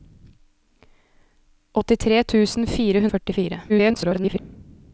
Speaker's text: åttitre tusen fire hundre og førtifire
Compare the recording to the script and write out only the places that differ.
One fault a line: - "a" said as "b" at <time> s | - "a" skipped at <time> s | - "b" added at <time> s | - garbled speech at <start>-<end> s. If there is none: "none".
- "hundre" skipped at 3.0 s
- garbled speech at 3.7-4.4 s